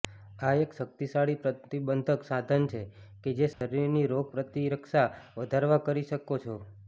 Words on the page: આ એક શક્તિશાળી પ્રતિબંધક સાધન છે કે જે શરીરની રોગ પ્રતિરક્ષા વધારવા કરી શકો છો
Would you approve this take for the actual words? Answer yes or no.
yes